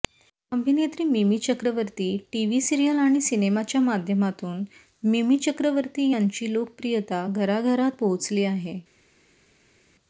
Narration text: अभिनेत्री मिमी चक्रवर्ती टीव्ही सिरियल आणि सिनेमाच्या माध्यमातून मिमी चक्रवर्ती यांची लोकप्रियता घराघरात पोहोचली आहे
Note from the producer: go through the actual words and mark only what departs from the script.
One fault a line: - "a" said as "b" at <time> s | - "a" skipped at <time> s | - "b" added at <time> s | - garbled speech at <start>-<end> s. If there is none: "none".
none